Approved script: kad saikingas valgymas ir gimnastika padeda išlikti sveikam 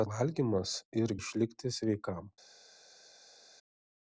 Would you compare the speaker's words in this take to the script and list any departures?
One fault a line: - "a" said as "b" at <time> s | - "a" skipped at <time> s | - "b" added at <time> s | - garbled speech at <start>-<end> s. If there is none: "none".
- "saikingas" skipped at 0.1 s
- "gimnastika padeda" skipped at 1.1 s